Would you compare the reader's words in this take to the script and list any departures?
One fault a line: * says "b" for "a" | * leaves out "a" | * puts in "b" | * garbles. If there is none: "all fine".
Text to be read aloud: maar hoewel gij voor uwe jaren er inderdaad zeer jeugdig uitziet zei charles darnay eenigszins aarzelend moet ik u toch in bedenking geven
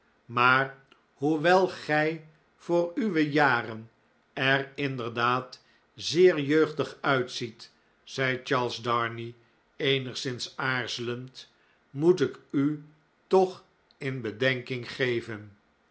all fine